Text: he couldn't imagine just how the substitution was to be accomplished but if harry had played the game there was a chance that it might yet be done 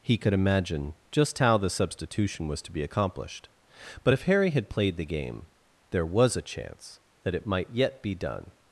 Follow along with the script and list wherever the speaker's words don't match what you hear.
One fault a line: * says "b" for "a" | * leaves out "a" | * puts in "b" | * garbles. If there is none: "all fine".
* says "could" for "couldn't"